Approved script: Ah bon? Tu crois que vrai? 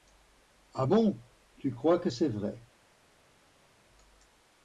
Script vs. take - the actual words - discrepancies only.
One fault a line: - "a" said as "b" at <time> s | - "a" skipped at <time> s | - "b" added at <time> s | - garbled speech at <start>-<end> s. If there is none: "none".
- "c'est" added at 2.1 s